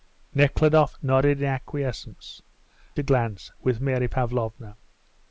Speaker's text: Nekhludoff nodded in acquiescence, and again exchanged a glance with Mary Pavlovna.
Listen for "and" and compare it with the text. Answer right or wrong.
wrong